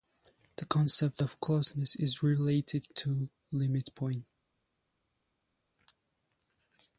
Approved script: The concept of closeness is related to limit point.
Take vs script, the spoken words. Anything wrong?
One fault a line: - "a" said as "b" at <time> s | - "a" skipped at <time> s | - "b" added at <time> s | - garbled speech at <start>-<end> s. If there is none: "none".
none